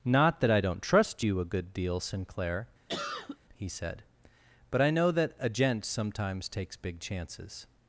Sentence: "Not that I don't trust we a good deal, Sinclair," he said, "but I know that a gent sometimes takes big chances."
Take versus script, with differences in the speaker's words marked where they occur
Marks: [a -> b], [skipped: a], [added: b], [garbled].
"Not that I don't trust [we -> you] a good deal, Sinclair," he said, "but I know that a gent sometimes takes big chances."